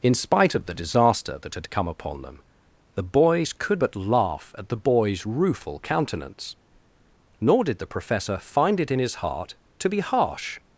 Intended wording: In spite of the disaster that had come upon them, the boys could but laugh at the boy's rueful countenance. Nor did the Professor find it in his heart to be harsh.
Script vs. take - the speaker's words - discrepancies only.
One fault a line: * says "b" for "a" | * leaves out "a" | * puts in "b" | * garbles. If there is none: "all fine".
all fine